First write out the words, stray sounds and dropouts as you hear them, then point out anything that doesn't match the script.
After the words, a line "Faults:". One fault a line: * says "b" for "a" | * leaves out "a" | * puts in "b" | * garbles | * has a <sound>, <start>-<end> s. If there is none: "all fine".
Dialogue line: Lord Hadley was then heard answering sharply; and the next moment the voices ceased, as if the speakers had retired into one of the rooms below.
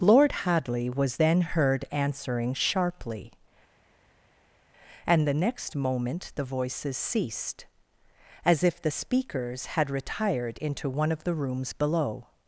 Lord Hadley was then heard answering sharply; and the next moment the voices ceased, as if the speakers had retired into one of the rooms below.
Faults:
all fine